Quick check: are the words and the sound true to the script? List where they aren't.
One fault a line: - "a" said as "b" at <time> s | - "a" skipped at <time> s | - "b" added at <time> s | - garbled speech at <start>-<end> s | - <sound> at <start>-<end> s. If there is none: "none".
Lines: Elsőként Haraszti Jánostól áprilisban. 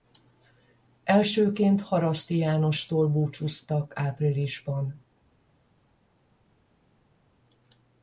- "búcsúztak" added at 3.1 s